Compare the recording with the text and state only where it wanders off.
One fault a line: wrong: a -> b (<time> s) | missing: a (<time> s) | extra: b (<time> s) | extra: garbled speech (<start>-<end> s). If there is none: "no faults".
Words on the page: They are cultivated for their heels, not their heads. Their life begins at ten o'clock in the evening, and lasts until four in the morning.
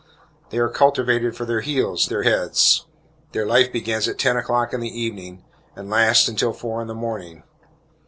missing: not (2.1 s)